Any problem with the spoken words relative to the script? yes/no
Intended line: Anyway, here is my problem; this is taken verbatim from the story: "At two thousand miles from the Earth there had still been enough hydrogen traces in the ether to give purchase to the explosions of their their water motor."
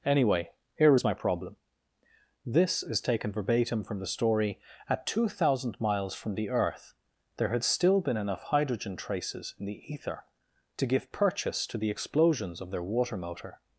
yes